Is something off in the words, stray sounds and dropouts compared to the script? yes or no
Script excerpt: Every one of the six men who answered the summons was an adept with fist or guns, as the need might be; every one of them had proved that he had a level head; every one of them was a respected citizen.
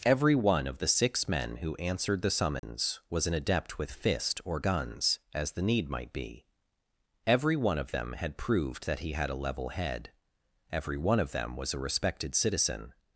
yes